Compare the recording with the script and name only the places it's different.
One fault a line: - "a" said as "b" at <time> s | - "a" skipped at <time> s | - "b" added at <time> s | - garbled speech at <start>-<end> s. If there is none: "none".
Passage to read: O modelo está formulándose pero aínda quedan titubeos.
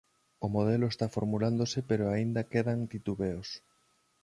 none